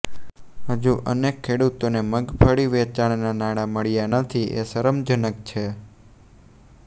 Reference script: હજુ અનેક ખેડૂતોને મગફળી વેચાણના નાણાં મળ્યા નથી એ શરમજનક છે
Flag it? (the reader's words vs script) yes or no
no